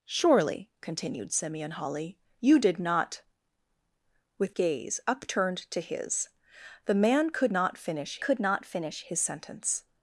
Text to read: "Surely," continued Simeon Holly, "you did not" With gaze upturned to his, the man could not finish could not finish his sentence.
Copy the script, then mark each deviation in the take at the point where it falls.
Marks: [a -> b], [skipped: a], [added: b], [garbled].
"Surely," continued Simeon Holly, "you did not" With gaze upturned to his, the man could not finish could not finish his sentence.